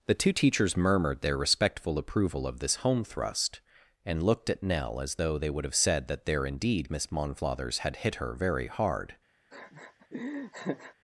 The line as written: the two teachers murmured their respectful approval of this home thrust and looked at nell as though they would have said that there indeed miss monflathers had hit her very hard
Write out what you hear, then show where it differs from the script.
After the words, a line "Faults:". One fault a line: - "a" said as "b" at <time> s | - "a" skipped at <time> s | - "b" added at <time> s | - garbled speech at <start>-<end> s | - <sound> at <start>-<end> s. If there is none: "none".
the two teachers murmured their respectful approval of this home thrust and looked at nell as though they would have said that there indeed miss monflathers had hit her very hard
Faults:
- laugh at 9.5-10.9 s